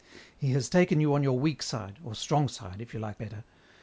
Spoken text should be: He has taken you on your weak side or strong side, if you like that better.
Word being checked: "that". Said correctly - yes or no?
no